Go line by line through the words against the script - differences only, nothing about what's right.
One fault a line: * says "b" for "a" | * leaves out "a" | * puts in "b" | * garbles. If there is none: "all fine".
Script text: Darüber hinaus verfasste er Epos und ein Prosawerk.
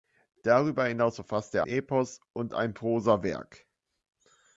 all fine